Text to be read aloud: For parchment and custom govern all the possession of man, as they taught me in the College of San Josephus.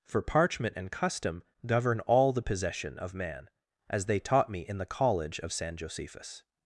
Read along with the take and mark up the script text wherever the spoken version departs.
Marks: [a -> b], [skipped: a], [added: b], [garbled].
For parchment and custom govern all the possession of man, as they taught me in the College of San Josephus.